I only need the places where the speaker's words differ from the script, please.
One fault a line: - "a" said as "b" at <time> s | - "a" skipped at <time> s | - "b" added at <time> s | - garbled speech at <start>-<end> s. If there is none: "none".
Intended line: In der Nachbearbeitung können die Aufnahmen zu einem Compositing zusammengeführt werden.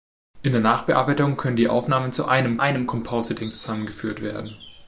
- "einem" added at 2.6 s